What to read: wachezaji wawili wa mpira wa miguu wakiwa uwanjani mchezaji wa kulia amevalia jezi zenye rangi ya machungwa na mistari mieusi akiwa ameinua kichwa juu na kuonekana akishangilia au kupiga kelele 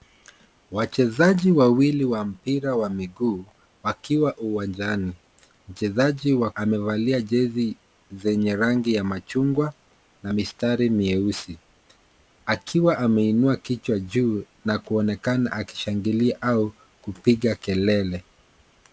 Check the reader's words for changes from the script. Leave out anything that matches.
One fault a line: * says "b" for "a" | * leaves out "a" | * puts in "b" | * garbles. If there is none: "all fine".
* leaves out "kulia"